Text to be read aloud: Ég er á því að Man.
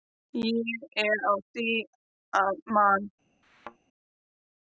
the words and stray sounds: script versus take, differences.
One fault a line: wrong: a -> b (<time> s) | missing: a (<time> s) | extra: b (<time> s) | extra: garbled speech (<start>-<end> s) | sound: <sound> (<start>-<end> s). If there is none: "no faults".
sound: thud (3.4-3.8 s)